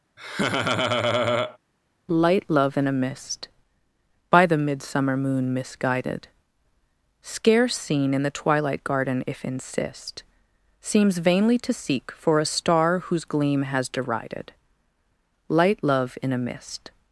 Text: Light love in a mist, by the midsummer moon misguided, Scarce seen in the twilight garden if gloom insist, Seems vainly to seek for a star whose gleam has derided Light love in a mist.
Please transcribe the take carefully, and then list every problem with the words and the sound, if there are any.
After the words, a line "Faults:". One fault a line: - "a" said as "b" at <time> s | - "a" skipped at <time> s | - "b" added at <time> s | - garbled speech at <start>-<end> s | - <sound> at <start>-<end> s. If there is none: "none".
Light love in a mist, by the midsummer moon misguided, Scarce seen in the twilight garden if insist, Seems vainly to seek for a star whose gleam has derided Light love in a mist.
Faults:
- laugh at 0.2-1.6 s
- "gloom" skipped at 9.4 s